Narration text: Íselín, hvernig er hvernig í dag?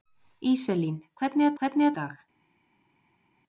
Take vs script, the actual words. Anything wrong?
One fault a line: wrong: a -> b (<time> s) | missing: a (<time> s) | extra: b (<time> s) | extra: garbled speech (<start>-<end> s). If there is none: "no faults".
no faults